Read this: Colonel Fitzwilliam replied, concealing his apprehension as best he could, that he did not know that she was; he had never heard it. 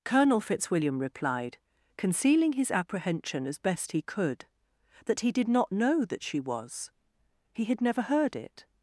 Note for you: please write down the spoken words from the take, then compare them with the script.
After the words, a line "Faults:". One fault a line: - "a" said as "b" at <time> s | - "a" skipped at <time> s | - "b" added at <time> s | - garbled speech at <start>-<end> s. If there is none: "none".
Colonel Fitzwilliam replied, concealing his apprehension as best he could, that he did not know that she was; he had never heard it.
Faults:
none